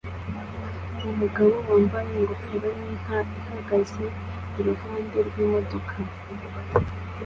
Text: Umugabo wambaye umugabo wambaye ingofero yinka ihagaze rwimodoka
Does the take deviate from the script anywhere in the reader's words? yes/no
yes